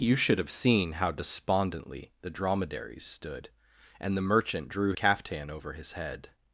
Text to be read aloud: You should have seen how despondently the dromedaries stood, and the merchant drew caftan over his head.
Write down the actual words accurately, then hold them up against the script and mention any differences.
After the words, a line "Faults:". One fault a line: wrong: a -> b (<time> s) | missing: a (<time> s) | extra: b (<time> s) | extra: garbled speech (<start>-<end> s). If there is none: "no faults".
You should have seen how despondently the dromedaries stood, and the merchant drew caftan over his head.
Faults:
no faults